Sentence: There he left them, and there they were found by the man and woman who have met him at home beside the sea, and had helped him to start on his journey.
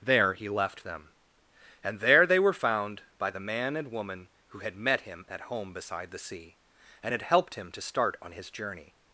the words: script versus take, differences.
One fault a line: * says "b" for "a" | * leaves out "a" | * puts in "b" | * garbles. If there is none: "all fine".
* says "had" for "have"